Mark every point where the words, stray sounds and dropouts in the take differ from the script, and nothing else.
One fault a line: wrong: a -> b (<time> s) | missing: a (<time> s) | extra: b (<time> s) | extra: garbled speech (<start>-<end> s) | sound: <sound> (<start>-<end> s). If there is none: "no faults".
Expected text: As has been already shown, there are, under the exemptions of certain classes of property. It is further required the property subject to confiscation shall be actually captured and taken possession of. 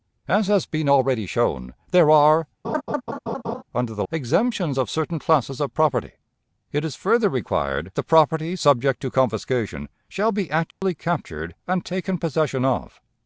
sound: laugh (2.6-3.6 s)
sound: dropout (10.7-10.8 s)